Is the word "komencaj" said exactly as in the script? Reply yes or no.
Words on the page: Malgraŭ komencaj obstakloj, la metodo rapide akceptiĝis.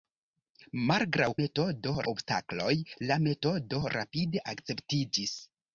no